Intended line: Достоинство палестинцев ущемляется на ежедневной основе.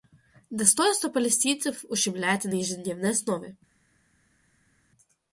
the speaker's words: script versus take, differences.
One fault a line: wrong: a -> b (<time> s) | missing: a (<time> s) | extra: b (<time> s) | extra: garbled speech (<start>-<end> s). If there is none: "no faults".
no faults